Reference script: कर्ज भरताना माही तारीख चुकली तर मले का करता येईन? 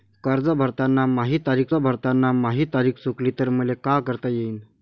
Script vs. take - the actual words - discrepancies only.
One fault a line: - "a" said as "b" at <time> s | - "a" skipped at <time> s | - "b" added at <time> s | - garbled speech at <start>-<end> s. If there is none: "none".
- "भरताना माही तारीख" added at 1.7 s